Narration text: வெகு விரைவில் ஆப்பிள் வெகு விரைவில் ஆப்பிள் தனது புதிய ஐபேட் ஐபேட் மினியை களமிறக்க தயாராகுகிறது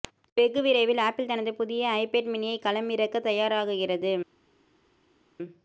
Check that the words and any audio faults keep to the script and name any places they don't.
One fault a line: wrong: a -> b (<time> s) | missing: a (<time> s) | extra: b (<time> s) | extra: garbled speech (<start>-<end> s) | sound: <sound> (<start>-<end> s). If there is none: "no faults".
missing: வெகு விரைவில் ஆப்பிள் (1.3 s)
missing: ஐபேட் (2.3 s)